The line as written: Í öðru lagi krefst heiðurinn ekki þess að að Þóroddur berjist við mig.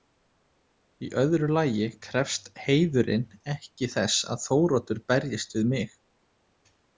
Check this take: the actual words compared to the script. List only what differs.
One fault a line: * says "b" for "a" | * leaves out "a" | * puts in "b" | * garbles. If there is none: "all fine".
* leaves out "að"